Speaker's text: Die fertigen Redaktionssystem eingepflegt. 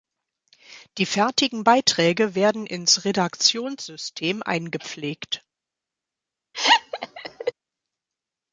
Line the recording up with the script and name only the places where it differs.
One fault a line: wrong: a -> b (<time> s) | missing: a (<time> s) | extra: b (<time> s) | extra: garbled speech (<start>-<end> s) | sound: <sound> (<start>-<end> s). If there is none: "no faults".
extra: Beiträge werden ins (1.6 s)
sound: laugh (6.5-7.5 s)